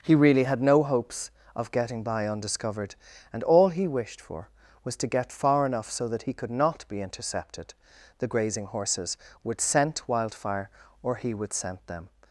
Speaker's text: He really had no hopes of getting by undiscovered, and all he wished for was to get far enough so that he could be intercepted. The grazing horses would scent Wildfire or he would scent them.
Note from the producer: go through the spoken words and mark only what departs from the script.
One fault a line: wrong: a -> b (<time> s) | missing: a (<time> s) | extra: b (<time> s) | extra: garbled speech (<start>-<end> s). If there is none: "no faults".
extra: not (6.5 s)